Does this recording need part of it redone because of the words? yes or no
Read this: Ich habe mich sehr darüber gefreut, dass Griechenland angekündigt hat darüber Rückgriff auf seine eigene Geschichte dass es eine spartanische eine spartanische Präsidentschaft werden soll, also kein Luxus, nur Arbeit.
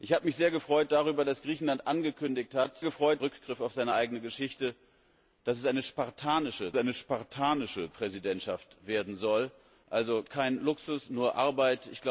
no